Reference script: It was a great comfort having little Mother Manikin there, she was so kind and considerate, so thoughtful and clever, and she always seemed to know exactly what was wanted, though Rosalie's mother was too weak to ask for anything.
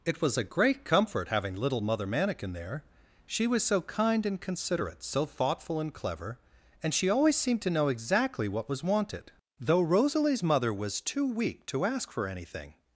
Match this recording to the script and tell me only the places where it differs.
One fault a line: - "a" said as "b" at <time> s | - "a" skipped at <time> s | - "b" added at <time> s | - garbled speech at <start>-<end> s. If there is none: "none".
none